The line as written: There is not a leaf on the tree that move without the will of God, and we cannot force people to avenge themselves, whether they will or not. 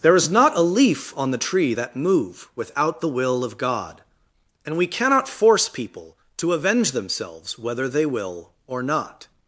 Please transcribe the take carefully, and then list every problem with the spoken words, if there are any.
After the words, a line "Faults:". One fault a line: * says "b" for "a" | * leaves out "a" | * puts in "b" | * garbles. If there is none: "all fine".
There is not a leaf on the tree that move without the will of God, and we cannot force people to avenge themselves, whether they will or not.
Faults:
all fine